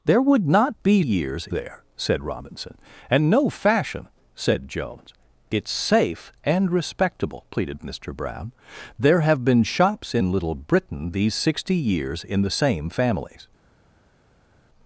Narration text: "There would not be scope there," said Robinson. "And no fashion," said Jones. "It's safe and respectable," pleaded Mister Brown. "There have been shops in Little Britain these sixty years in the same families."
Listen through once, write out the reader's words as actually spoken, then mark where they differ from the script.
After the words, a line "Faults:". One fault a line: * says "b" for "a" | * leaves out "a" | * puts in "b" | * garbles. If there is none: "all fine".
"There would not be years there," said Robinson. "And no fashion," said Jones. "It's safe and respectable," pleaded Mister Brown. "There have been shops in Little Britain these sixty years in the same families."
Faults:
* says "years" for "scope"